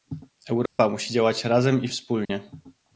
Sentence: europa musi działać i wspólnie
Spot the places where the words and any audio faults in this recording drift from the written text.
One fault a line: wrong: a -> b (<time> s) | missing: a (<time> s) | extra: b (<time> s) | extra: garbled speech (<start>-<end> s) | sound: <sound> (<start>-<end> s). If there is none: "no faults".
sound: dropout (0.7-0.8 s)
extra: razem (1.4 s)
sound: dropout (2.2-2.3 s)